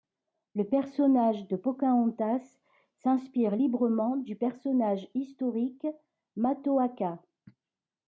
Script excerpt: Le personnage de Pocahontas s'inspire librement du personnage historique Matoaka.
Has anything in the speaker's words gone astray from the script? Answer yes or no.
no